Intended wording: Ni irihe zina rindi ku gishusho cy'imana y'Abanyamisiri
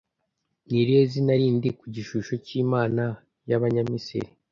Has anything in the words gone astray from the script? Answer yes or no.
no